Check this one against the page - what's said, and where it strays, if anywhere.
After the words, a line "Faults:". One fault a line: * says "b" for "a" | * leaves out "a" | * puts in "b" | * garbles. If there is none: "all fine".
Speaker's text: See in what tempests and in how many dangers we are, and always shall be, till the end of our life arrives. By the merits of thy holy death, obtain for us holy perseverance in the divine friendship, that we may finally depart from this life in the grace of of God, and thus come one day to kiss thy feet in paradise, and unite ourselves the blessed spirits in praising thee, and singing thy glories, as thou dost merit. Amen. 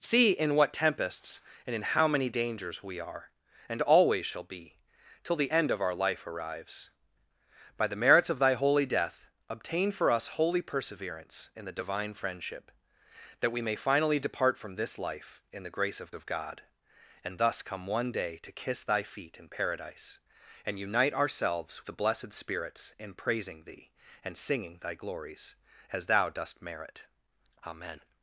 See in what tempests and in how many dangers we are, and always shall be, till the end of our life arrives. By the merits of thy holy death, obtain for us holy perseverance in the divine friendship, that we may finally depart from this life in the grace of of God, and thus come one day to kiss thy feet in paradise, and unite ourselves the blessed spirits in praising thee, and singing thy glories, as thou dost merit. Amen.
Faults:
all fine